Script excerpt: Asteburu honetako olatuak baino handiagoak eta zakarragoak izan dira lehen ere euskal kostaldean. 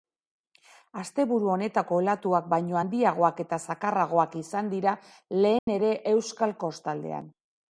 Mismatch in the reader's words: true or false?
false